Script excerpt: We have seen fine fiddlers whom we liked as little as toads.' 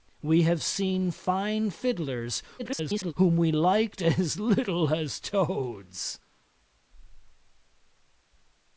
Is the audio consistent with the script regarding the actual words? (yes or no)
no